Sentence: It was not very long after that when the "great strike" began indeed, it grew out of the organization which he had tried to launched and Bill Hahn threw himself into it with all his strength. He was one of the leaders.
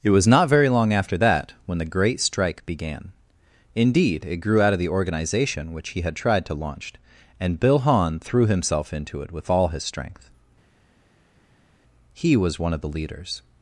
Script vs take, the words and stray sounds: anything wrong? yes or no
yes